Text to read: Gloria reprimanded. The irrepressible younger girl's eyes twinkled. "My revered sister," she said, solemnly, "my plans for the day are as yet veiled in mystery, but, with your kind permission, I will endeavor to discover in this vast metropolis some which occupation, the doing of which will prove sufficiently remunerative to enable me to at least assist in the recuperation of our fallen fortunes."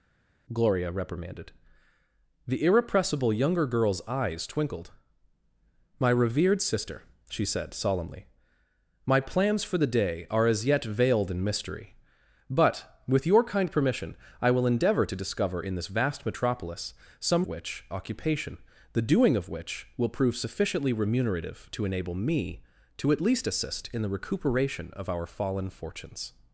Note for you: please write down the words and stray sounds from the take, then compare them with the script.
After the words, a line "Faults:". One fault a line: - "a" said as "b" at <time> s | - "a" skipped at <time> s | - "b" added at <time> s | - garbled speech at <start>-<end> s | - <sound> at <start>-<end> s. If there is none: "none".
Gloria reprimanded. The irrepressible younger girl's eyes twinkled. "My revered sister," she said, solemnly, "my plans for the day are as yet veiled in mystery, but, with your kind permission, I will endeavor to discover in this vast metropolis some which occupation, the doing of which will prove sufficiently remunerative to enable me to at least assist in the recuperation of our fallen fortunes."
Faults:
none